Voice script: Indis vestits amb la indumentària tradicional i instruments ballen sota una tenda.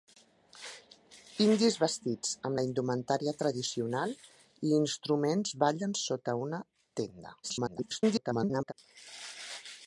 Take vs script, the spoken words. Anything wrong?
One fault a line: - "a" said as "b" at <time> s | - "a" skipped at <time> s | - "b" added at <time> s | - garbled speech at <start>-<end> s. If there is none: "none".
- garbled speech at 7.4-8.7 s